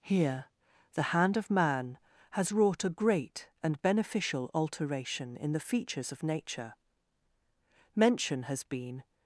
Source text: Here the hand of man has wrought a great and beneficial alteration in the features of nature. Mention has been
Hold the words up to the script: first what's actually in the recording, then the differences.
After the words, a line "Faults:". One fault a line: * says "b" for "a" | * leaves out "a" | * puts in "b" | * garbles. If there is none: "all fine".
Here the hand of man has wrought a great and beneficial alteration in the features of nature. Mention has been
Faults:
all fine